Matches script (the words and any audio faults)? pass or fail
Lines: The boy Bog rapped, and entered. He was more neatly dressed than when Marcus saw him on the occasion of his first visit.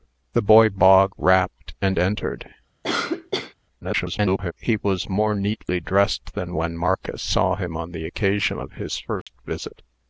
fail